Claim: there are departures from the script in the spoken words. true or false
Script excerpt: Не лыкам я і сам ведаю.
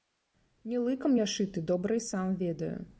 true